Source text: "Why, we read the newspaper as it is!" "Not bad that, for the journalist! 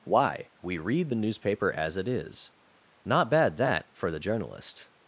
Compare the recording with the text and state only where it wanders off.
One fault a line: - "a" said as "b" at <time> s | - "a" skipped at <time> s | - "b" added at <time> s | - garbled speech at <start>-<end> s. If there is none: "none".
none